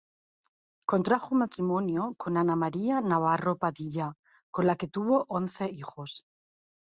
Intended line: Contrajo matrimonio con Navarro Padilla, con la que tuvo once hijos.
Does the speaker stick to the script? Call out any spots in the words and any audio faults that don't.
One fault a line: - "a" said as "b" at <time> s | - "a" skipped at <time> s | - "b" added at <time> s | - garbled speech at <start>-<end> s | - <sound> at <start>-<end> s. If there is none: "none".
- "Ana María" added at 2.4 s